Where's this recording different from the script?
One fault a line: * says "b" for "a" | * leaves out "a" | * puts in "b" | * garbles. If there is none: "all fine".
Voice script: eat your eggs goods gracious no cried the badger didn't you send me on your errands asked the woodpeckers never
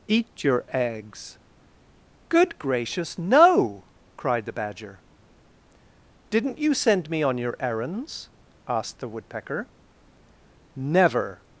* says "good" for "goods"
* says "woodpecker" for "woodpeckers"